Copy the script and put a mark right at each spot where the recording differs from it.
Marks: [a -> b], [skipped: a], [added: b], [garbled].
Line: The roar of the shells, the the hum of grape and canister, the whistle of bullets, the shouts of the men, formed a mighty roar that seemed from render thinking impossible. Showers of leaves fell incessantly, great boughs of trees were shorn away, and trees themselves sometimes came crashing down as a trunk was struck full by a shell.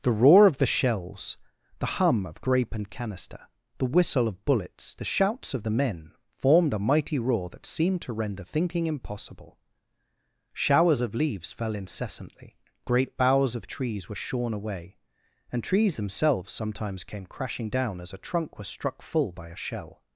The roar of the shells, the [skipped: the] hum of grape and canister, the whistle of bullets, the shouts of the men, formed a mighty roar that seemed [from -> to] render thinking impossible. Showers of leaves fell incessantly, great boughs of trees were shorn away, and trees themselves sometimes came crashing down as a trunk was struck full by a shell.